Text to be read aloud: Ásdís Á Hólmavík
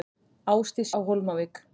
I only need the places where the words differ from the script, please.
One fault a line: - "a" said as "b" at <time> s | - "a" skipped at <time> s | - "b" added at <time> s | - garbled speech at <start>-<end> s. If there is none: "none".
none